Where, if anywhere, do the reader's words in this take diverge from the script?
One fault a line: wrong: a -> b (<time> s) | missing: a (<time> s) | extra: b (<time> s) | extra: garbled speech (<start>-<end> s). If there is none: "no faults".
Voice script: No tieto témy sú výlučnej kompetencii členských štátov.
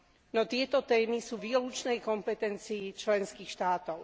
no faults